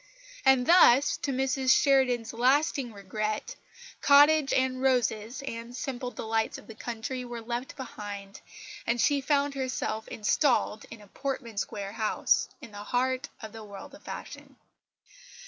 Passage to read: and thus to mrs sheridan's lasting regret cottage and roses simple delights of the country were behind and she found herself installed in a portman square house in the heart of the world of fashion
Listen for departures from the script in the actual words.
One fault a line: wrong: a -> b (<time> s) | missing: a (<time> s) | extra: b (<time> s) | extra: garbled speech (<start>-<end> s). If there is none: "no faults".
extra: and (5.4 s)
extra: left (7.4 s)